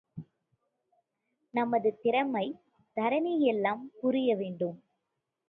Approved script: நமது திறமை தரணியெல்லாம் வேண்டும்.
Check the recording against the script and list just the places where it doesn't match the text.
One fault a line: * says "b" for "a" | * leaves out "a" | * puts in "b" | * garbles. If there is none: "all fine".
* puts in "புரிய"